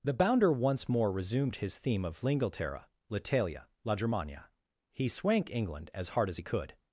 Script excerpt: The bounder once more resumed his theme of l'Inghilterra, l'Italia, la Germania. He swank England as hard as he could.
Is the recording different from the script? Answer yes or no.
no